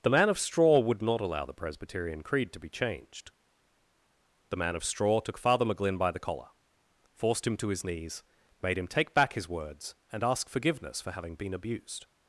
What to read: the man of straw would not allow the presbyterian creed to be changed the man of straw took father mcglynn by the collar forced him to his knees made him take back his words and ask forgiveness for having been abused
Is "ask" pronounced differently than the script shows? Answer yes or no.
no